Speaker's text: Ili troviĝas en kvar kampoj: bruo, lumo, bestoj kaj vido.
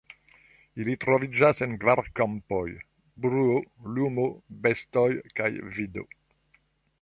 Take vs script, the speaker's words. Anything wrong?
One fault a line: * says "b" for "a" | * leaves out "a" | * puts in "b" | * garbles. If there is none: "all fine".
all fine